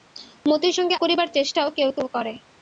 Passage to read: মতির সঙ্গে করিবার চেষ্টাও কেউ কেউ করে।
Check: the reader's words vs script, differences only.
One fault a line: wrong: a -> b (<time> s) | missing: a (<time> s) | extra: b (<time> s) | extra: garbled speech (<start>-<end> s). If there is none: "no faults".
no faults